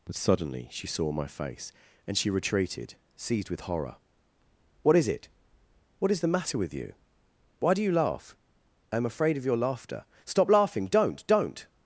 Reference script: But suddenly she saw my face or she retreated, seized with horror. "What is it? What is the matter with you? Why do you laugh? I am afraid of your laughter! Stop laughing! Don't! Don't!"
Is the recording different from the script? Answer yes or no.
yes